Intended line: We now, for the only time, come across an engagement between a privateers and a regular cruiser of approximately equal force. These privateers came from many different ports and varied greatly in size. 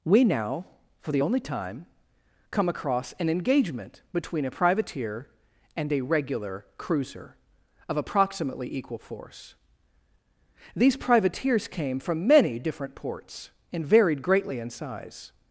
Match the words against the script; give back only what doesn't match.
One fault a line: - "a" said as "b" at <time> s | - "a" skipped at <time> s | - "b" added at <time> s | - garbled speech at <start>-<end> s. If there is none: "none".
- "privateers" said as "privateer" at 4.5 s